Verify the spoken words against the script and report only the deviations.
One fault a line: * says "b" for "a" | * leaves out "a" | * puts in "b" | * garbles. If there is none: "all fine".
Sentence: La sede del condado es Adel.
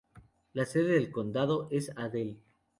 all fine